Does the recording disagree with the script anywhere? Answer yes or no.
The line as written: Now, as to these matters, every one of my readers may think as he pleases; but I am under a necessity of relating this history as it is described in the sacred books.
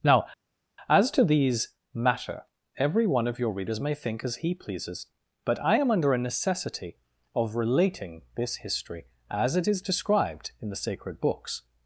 yes